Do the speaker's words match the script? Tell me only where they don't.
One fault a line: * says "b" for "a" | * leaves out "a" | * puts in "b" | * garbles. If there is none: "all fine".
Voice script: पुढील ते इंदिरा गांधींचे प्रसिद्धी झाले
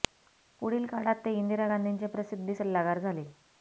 * puts in "काळात"
* puts in "सल्लागार"